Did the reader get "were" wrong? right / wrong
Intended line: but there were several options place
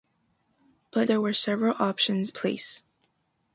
right